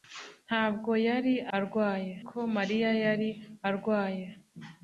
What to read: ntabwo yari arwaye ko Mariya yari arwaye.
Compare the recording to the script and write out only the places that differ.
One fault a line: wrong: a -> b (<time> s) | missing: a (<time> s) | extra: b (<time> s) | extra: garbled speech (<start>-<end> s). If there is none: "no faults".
no faults